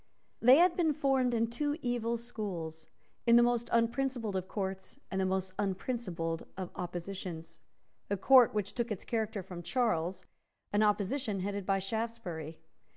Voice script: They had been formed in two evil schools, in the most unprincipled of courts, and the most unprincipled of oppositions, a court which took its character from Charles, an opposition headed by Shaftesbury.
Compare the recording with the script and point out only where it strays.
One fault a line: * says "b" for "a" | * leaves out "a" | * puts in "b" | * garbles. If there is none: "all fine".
all fine